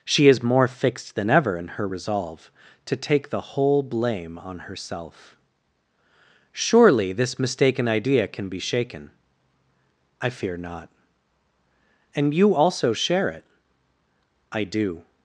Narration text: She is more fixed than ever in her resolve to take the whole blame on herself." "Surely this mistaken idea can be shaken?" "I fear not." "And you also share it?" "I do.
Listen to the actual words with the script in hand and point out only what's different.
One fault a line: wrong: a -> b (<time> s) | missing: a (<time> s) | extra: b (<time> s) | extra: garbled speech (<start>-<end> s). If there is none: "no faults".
no faults